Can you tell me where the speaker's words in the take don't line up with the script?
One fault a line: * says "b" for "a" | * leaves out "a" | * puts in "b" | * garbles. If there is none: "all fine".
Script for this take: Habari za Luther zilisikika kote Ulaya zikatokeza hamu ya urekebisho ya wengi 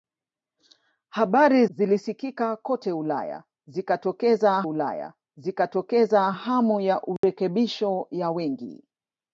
* says "zilisikika kote Ulaya zikatokeza" for "za Luther zilisikika kote"